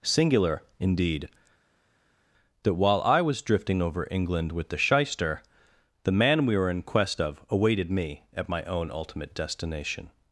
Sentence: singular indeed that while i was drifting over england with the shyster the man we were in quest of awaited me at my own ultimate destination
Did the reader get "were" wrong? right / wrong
right